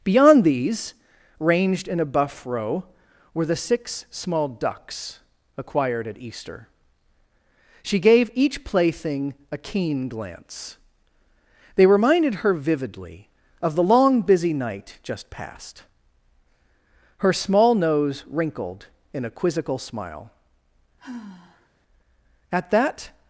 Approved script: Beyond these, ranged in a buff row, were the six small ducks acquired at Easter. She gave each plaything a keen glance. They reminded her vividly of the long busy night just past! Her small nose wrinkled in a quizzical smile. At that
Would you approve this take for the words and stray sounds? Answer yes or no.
no